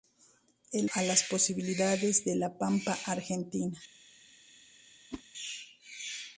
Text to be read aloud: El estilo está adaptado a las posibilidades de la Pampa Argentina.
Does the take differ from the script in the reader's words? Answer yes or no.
yes